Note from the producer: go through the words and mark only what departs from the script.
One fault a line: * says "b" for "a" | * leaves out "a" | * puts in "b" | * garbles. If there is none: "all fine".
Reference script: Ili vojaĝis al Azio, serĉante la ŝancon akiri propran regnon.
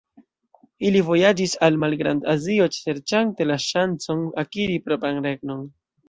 * puts in "Malgrand"